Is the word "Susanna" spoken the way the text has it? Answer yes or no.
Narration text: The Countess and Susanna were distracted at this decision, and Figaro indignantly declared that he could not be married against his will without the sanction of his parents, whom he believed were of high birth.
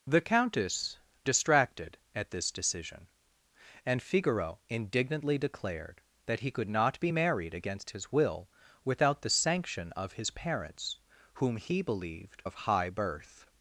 no